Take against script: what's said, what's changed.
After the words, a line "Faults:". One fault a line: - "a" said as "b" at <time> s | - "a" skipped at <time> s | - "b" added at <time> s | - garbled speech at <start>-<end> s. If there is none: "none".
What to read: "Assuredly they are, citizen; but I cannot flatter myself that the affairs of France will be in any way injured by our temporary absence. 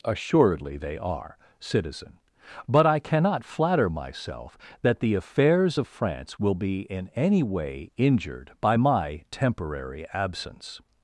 "Assuredly they are, citizen; but I cannot flatter myself that the affairs of France will be in any way injured by my temporary absence.
Faults:
- "our" said as "my" at 8.7 s